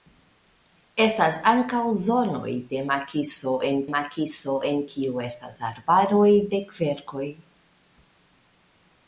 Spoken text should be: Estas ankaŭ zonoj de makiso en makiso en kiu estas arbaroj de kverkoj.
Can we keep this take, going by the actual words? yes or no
yes